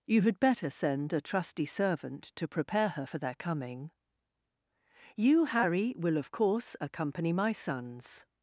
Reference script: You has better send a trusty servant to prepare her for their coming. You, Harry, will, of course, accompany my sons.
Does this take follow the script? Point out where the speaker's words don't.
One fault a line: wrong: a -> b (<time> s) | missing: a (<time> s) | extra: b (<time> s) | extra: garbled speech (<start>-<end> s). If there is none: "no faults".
wrong: has -> had (0.2 s)